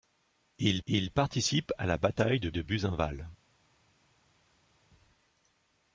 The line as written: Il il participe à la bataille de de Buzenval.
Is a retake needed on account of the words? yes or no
no